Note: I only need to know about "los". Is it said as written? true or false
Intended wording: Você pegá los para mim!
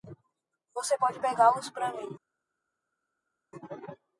true